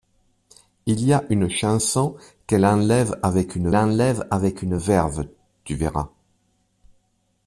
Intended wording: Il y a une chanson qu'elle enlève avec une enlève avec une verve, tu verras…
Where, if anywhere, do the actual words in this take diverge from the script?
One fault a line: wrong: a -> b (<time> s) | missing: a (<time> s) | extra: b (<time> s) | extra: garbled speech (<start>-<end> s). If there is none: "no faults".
no faults